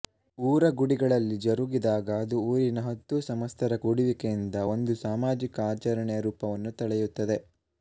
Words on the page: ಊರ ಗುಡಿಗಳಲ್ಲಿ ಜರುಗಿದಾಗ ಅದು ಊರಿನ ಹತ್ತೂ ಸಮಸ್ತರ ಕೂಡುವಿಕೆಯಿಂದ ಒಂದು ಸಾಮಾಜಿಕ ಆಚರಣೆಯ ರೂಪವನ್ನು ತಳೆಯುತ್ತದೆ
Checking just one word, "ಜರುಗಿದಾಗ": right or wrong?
right